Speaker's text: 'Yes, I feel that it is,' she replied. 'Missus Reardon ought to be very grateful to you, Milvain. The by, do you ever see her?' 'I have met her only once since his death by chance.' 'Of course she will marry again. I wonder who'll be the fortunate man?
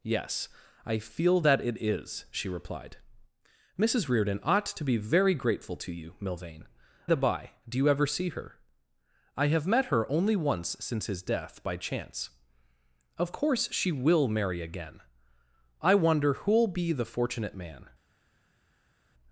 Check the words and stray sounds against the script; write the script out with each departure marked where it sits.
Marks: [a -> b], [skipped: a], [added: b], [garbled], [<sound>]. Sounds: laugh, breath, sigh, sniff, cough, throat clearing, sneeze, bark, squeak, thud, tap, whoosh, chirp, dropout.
'Yes, I feel that it is,' she replied. 'Missus Reardon ought to be very grateful to you, Milvain. The by, do you ever see her?' 'I have met her only once since his death by chance.' 'Of course she will marry again. I wonder who'll be the fortunate man?